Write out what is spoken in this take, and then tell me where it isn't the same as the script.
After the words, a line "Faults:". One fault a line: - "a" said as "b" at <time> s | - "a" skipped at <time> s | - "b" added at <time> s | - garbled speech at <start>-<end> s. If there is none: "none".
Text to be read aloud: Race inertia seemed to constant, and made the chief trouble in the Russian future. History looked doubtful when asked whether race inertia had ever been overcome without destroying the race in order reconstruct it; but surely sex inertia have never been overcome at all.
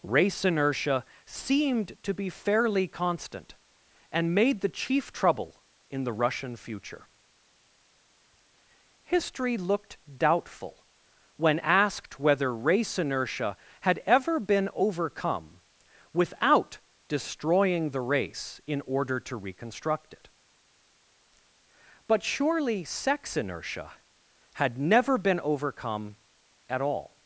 Race inertia seemed to be fairly constant, and made the chief trouble in the Russian future. History looked doubtful when asked whether race inertia had ever been overcome without destroying the race in order to reconstruct it; but surely sex inertia had never been overcome at all.
Faults:
- "be fairly" added at 2.1 s
- "to" added at 19.2 s
- "have" said as "had" at 24.5 s